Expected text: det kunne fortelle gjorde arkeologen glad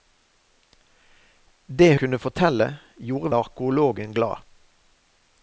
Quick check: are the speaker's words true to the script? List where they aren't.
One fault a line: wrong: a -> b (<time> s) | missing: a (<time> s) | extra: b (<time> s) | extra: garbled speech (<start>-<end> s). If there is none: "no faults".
no faults